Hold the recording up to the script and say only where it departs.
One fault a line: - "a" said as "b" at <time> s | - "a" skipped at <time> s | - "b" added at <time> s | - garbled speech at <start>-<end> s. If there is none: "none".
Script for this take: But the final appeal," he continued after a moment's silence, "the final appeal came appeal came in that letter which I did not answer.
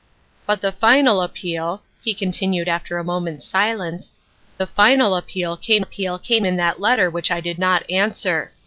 none